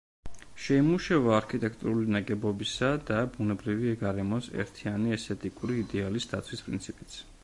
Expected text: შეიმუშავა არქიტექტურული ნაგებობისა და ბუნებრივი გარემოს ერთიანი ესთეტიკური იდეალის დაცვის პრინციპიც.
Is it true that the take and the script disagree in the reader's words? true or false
false